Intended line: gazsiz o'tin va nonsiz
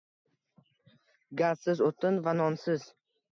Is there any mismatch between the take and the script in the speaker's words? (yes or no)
no